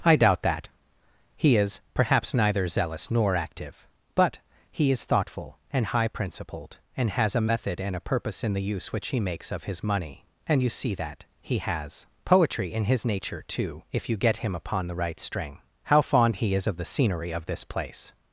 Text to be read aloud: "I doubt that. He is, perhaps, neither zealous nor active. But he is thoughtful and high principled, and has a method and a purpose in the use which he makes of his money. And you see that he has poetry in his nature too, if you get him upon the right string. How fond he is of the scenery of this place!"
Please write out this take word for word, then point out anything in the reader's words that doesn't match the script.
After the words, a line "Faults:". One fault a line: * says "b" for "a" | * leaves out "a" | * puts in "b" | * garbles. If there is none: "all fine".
"I doubt that. He is, perhaps, neither zealous nor active. But he is thoughtful and high principled, and has a method and a purpose in the use which he makes of his money. And you see that he has poetry in his nature too, if you get him upon the right string. How fond he is of the scenery of this place!"
Faults:
all fine